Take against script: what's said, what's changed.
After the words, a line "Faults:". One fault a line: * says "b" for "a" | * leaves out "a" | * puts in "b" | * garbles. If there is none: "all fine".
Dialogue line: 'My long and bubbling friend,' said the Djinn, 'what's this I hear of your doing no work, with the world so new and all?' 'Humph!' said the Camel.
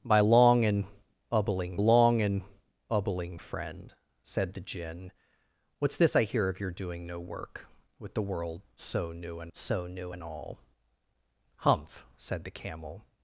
'My long and bubbling long and bubbling friend,' said the Djinn, 'what's this I hear of your doing no work, with the world so new and so new and all?' 'Humph!' said the Camel.
Faults:
* puts in "long and bubbling"
* puts in "so new and"